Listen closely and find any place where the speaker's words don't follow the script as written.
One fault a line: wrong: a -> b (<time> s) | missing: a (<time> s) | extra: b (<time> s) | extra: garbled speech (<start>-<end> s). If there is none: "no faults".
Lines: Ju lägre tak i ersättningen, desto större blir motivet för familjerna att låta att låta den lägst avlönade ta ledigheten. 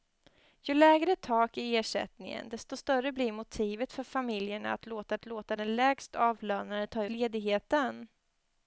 no faults